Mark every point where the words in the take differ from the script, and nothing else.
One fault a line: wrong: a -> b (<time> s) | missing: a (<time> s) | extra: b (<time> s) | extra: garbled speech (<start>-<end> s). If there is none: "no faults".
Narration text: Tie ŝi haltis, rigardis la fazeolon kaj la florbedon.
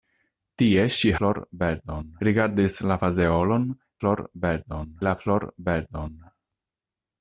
wrong: haltis -> florbedon (1.2 s)
wrong: kaj -> florbedon (4.0 s)